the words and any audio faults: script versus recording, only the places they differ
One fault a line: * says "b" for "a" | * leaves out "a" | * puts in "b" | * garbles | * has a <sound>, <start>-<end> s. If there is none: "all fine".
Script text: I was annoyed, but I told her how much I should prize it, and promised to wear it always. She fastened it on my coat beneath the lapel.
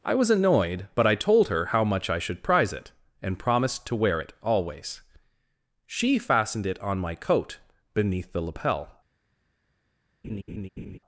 * has a laugh, 10.2-11.0 s